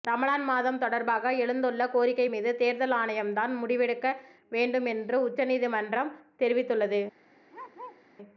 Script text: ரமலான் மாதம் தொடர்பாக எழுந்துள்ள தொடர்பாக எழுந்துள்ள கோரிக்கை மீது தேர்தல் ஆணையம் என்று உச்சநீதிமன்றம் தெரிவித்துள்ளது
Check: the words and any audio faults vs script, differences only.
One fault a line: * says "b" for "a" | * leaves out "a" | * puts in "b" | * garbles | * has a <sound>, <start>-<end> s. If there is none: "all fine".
* leaves out "தொடர்பாக எழுந்துள்ள"
* puts in "தான் முடிவெடுக்க வேண்டும்"
* has a bark, 7.5-8.0 s